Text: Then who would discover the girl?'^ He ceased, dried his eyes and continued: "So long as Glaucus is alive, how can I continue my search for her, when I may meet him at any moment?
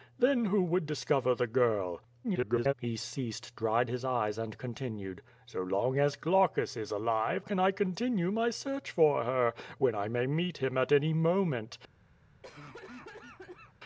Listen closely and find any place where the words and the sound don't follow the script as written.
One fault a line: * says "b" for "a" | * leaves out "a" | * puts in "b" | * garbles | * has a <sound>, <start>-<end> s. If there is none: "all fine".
* garbles
* leaves out "how"
* has a cough, 12.4-13.7 s